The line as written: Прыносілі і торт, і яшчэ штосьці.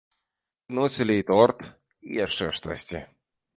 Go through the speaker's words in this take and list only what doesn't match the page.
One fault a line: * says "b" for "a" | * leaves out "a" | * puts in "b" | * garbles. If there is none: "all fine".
all fine